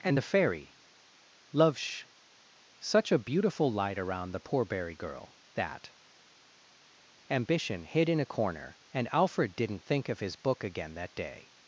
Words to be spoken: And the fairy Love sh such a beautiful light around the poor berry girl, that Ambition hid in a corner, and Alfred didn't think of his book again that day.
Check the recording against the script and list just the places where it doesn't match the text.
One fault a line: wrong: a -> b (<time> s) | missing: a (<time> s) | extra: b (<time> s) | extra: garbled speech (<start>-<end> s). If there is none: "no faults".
no faults